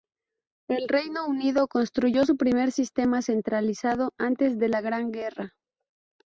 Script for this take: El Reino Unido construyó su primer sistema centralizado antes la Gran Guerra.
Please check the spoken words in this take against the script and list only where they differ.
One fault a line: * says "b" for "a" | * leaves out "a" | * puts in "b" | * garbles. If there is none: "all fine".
* puts in "de"